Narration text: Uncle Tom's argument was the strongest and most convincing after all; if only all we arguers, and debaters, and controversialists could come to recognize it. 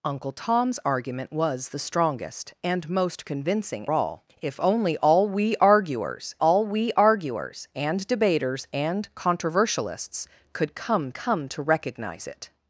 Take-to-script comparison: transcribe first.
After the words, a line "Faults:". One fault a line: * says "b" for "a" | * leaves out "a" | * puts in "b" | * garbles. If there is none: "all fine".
Uncle Tom's argument was the strongest and most convincing all; if only all we arguers all we arguers, and debaters, and controversialists could come come to recognize it.
Faults:
* leaves out "after"
* puts in "all we arguers"
* puts in "come"